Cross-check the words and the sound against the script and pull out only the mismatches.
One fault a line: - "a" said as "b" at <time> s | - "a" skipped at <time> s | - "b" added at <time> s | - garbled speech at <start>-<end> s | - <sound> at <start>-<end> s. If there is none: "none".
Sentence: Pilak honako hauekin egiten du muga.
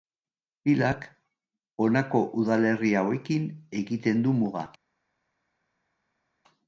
- "udalerri" added at 2.4 s